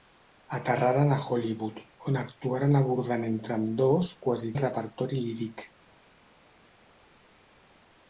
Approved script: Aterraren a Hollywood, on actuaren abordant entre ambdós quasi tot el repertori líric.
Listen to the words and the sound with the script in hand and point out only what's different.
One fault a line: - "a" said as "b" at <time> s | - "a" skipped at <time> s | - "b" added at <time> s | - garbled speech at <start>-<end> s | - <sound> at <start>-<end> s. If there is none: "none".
- "tot" skipped at 4.5 s